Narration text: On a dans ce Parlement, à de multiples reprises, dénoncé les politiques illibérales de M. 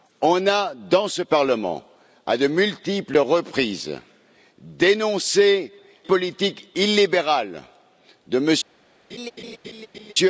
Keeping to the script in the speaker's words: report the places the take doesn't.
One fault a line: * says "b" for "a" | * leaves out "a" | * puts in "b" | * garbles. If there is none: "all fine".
* leaves out "les"